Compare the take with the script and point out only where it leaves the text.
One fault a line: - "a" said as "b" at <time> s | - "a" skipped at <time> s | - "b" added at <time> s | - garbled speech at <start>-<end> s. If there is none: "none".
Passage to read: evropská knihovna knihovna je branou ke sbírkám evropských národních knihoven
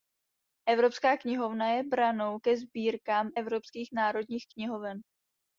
- "knihovna" skipped at 1.7 s